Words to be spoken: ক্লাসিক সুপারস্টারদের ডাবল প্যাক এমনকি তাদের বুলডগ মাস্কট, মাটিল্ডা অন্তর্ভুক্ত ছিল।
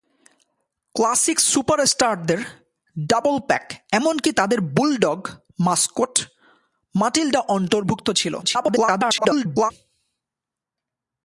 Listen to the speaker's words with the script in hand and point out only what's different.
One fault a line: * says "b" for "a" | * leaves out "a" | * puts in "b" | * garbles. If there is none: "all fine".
* garbles